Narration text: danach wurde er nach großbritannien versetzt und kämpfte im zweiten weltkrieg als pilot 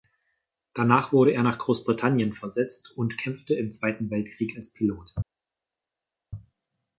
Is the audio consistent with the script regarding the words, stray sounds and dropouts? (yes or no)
yes